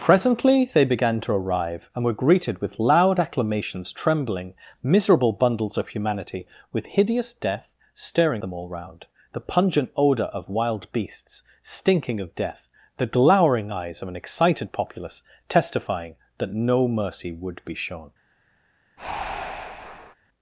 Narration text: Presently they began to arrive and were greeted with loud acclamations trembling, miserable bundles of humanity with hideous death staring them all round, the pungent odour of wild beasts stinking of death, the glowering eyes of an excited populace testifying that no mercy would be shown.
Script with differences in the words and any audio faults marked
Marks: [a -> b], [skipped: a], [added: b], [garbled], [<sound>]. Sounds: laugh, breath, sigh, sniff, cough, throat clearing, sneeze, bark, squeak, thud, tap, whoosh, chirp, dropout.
Presently they began to arrive and were greeted with loud acclamations trembling, miserable bundles of humanity with hideous death staring them all round, the pungent odour of wild beasts stinking of death, the glowering eyes of an excited populace testifying that no mercy would be shown. [breath]